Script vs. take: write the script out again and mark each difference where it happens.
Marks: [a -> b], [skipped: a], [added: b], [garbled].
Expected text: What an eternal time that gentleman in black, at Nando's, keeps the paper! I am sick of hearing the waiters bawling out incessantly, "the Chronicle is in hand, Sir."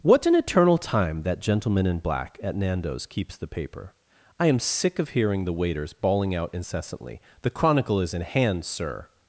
What an eternal time that gentleman in black, at Nando's, keeps the paper! I am sick of hearing the waiters bawling out incessantly, "the Chronicle is in hand, Sir."